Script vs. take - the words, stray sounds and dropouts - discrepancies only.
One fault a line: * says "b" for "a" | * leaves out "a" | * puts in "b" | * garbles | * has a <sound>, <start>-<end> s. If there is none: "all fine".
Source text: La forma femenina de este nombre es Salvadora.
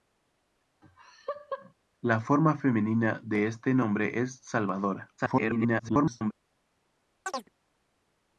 * has a laugh, 0.8-1.7 s
* garbles
* has a chirp, 7.3-7.5 s